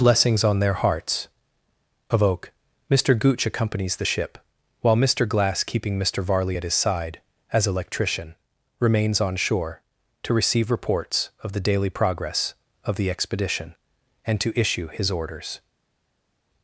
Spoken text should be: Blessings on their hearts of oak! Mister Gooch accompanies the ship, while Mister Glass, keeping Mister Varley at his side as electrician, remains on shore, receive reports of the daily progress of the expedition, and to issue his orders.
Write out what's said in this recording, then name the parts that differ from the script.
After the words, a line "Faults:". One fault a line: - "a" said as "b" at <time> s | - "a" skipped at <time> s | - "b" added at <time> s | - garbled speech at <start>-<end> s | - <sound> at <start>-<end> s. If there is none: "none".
Blessings on their hearts of oak! Mister Gooch accompanies the ship, while Mister Glass, keeping Mister Varley at his side as electrician, remains on shore, to receive reports of the daily progress of the expedition, and to issue his orders.
Faults:
- "to" added at 10.2 s